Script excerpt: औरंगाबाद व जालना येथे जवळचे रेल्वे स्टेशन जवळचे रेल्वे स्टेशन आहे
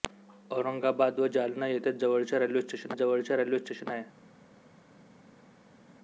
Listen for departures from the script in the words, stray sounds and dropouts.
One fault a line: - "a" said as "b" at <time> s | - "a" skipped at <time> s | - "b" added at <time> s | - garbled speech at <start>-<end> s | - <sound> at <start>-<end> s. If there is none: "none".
none